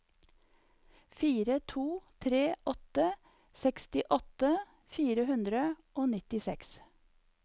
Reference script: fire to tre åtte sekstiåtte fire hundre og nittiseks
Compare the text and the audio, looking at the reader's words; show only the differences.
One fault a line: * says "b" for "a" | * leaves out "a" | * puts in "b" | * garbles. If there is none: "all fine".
all fine